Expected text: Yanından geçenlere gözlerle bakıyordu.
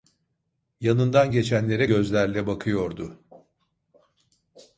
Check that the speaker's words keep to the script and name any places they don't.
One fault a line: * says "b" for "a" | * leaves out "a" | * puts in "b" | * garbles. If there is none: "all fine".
all fine